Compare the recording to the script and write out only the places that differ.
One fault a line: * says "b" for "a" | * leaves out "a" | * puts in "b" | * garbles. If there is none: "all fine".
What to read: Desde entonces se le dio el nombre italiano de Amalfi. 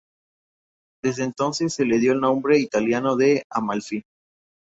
all fine